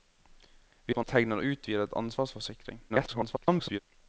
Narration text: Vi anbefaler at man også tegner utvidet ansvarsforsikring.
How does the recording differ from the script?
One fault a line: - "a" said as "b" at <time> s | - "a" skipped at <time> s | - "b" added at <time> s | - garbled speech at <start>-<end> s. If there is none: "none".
- "anbefaler" skipped at 0.9 s
- "også" skipped at 1.1 s
- garbled speech at 2.9-3.8 s